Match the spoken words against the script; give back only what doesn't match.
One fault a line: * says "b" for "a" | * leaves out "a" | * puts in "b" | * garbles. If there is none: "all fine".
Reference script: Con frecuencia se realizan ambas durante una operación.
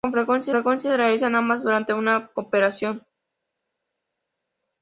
* puts in "frecuencia"